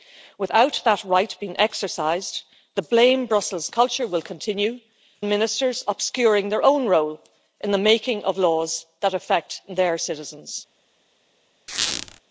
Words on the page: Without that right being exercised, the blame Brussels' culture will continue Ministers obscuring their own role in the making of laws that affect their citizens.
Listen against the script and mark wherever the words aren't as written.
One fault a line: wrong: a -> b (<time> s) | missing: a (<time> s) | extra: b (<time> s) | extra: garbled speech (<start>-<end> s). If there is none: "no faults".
no faults